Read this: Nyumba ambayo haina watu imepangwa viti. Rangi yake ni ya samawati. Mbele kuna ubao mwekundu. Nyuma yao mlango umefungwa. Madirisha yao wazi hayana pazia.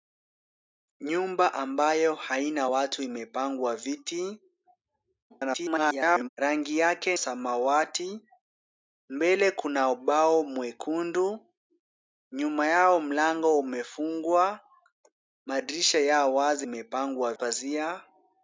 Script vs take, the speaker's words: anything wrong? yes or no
yes